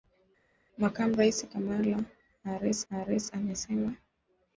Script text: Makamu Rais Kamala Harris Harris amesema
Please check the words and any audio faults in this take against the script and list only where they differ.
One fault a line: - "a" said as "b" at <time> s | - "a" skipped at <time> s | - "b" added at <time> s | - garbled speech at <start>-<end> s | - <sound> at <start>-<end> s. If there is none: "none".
none